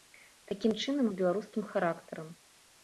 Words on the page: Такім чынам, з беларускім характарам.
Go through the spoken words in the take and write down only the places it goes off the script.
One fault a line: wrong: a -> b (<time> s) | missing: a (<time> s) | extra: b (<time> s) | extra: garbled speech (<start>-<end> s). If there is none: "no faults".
no faults